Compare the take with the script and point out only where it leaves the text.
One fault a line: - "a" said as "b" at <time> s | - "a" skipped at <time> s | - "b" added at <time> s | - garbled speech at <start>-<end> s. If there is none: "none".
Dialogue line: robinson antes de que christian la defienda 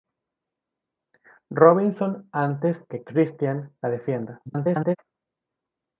- "de" skipped at 2.8 s
- garbled speech at 4.4-5.0 s